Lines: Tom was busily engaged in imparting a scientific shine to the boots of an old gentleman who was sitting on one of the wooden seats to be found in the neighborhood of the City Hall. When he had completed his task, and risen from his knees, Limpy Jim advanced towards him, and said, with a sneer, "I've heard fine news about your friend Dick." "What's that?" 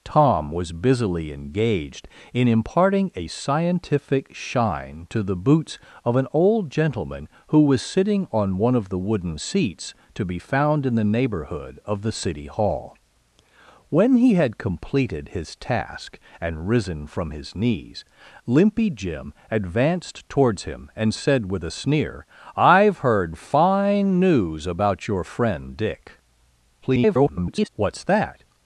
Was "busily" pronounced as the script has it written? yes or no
yes